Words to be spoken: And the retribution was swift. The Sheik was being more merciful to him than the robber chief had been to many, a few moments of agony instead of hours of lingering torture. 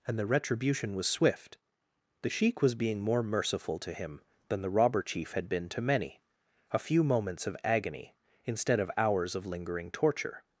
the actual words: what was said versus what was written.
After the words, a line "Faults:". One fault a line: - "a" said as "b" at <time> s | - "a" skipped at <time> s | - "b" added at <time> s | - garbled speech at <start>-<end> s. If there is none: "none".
And the retribution was swift. The Sheik was being more merciful to him than the robber chief had been to many, a few moments of agony instead of hours of lingering torture.
Faults:
none